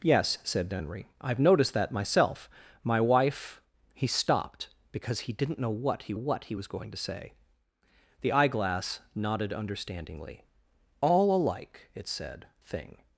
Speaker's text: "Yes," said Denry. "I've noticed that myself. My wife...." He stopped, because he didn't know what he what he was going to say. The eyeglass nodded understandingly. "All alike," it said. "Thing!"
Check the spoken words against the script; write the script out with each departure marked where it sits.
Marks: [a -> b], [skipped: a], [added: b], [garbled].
"Yes," said Denry. "I've noticed that myself. My wife...." He stopped, because he didn't know what he what he was going to say. The eyeglass nodded understandingly. "All alike," it said. "Thing!"